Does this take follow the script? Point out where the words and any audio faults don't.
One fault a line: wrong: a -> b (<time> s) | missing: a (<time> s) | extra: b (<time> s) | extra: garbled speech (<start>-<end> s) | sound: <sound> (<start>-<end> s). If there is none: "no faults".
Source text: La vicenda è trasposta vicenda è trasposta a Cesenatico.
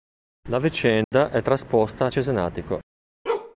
sound: dropout (1.0-1.1 s)
missing: vicenda è trasposta (2.0 s)
sound: bark (3.3-3.6 s)